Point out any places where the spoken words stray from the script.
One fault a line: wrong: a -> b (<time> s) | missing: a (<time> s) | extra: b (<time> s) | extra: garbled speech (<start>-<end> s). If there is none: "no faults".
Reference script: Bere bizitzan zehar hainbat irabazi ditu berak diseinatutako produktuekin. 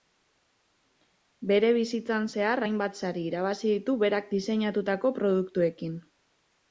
extra: sari (3.0 s)